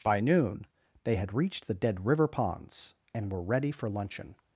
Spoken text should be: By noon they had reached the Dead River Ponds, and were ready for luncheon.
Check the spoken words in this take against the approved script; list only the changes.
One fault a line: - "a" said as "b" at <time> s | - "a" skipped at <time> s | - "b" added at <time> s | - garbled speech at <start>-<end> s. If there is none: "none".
none